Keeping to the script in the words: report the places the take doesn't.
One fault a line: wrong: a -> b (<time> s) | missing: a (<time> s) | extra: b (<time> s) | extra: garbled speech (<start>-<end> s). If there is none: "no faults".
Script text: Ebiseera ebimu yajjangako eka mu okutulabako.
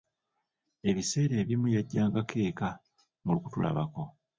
no faults